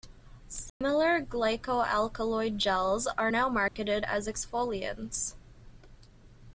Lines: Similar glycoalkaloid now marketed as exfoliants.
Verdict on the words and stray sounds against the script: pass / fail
fail